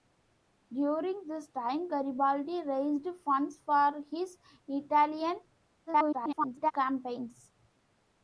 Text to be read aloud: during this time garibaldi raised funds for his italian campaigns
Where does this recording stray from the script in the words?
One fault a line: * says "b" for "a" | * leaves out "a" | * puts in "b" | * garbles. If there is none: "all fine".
* garbles